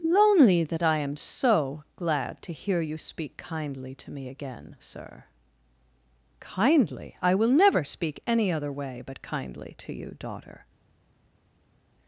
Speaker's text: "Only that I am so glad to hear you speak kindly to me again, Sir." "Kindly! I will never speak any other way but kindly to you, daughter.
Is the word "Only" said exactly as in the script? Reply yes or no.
no